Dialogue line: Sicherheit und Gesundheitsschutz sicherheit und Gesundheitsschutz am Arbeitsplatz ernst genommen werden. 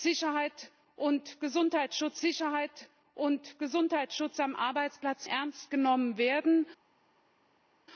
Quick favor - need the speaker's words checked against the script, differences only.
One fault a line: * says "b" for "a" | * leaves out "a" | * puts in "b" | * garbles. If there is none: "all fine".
all fine